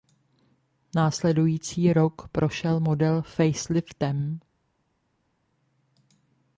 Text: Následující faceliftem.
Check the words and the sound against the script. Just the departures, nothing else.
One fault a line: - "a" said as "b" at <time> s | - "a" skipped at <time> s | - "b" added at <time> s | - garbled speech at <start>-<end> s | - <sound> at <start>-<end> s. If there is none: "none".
- "rok prošel model" added at 1.9 s